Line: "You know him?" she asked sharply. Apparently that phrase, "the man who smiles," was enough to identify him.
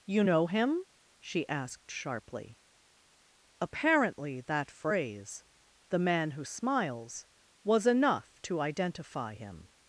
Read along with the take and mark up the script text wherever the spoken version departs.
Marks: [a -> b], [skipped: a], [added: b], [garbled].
"You know him?" she asked sharply. Apparently that phrase, "the man who smiles," was enough to identify him.